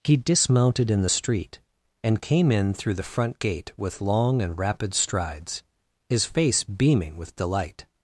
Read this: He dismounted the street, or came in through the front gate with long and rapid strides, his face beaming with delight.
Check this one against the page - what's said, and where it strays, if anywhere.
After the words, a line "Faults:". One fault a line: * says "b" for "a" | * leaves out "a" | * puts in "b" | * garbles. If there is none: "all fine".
He dismounted in the street, and came in through the front gate with long and rapid strides, his face beaming with delight.
Faults:
* puts in "in"
* says "and" for "or"